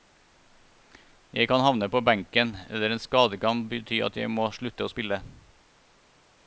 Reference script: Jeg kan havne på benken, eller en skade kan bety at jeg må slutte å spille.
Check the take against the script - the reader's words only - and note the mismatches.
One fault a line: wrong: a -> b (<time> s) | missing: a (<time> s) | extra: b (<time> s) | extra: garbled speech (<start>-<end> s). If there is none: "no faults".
no faults